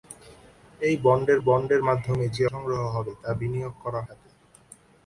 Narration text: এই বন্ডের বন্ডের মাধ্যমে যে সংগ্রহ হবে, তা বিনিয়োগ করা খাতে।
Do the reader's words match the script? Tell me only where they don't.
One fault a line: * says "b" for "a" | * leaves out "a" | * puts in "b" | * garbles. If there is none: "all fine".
all fine